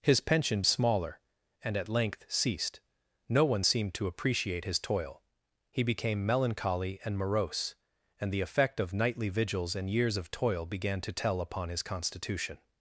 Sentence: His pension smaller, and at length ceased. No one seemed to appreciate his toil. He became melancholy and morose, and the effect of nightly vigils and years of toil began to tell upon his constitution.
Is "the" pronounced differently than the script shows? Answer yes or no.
no